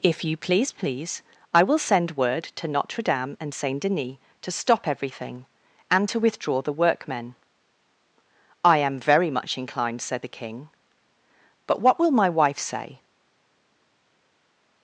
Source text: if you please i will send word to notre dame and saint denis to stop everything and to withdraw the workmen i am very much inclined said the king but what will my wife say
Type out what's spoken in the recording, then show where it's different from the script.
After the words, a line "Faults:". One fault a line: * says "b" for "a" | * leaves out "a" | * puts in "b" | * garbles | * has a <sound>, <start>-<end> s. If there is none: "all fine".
if you please please i will send word to notre dame and saint denis to stop everything and to withdraw the workmen i am very much inclined said the king but what will my wife say
Faults:
* puts in "please"